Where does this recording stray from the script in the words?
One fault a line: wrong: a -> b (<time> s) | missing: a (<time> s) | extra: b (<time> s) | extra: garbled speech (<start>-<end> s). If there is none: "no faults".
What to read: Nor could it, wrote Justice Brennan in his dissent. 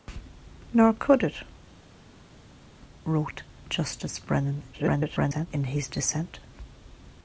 extra: garbled speech (4.7-5.5 s)